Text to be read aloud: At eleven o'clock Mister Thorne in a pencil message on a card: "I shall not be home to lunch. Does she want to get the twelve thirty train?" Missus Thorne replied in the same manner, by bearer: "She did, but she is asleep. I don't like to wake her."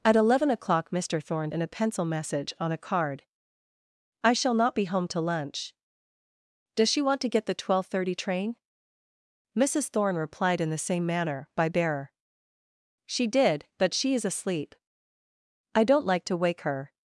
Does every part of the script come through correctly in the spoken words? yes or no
yes